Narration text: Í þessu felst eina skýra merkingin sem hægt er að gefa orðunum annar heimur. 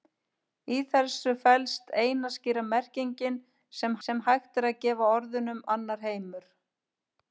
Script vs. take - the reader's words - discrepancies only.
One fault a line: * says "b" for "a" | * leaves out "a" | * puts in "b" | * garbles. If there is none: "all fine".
* puts in "sem"